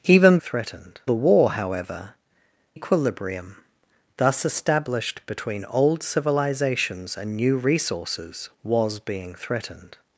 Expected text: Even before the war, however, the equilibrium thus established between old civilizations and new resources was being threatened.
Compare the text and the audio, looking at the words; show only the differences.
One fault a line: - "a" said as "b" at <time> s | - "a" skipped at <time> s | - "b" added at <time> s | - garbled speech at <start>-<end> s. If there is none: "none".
- "before" said as "threatened" at 0.4 s
- "the" skipped at 2.1 s